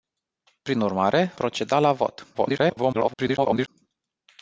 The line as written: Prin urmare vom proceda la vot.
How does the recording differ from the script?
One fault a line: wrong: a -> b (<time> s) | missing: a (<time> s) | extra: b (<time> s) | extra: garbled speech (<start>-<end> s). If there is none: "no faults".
missing: vom (1.3 s)
extra: garbled speech (2.3-3.7 s)